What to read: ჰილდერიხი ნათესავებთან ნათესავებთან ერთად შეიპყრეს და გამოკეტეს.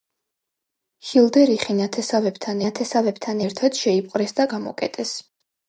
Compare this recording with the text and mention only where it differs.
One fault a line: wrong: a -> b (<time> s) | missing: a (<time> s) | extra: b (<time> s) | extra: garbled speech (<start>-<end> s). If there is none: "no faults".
no faults